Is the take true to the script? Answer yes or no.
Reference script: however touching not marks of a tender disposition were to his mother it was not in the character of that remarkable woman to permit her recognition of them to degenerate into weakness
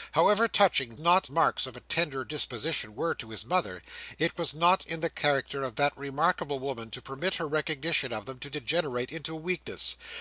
yes